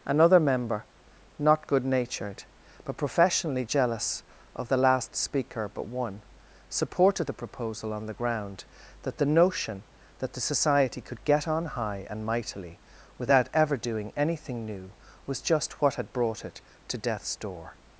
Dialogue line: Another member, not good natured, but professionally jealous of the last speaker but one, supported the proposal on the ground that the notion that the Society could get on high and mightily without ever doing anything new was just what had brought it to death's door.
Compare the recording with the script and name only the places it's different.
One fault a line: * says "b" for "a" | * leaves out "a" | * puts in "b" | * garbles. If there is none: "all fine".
all fine